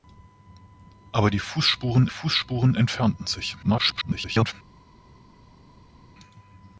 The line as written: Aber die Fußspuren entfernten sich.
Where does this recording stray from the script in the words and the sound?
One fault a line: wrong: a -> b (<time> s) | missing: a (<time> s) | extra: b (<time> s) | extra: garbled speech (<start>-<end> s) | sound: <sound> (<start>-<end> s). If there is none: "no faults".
extra: Fußspuren (2.0 s)
extra: garbled speech (3.6-4.5 s)